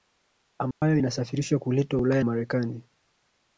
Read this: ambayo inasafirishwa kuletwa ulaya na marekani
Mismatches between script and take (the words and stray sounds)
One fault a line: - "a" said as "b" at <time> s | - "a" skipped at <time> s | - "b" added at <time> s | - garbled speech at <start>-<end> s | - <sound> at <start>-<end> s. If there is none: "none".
- dropout at 0.7-0.8 s
- "na" skipped at 2.2 s